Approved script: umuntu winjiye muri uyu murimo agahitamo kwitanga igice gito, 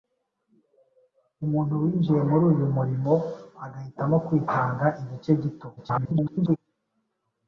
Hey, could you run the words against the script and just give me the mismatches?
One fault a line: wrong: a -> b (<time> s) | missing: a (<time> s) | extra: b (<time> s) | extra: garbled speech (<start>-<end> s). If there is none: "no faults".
extra: garbled speech (5.8-6.6 s)